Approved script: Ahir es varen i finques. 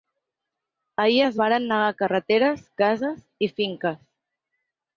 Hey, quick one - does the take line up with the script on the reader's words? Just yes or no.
no